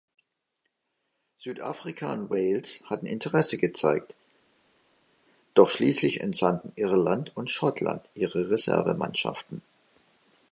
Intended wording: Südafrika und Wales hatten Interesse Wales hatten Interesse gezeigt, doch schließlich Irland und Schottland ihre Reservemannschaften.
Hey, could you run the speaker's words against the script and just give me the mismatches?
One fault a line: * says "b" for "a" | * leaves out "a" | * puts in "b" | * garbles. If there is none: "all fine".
* leaves out "Wales hatten Interesse"
* puts in "entsandten"